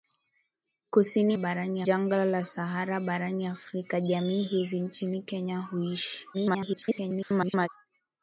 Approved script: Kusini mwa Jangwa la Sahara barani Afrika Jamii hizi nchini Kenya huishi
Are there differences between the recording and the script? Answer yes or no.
yes